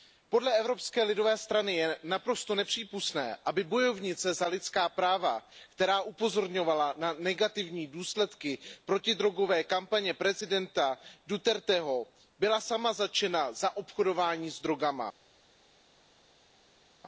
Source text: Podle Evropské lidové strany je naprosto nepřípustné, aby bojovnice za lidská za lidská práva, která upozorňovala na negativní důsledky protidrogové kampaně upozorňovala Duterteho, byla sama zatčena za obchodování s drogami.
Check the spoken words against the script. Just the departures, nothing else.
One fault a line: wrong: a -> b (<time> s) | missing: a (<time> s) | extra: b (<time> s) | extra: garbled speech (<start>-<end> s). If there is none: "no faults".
missing: za lidská (4.9 s)
wrong: upozorňovala -> prezidenta (10.1 s)